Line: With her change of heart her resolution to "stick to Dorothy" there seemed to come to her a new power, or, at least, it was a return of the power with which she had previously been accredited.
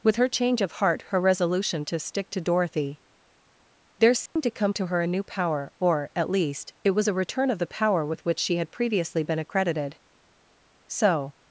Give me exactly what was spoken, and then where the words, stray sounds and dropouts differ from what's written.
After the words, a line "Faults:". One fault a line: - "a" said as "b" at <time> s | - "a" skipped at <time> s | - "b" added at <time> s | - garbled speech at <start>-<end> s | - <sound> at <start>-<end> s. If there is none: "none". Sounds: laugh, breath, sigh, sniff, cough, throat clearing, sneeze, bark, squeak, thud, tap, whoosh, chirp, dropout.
With her change of heart her resolution to "stick to Dorothy" there seemed to come to her a new power, or, at least, it was a return of the power with which she had previously been accredited. So
Faults:
- dropout at 4.3-4.4 s
- "So" added at 10.9 s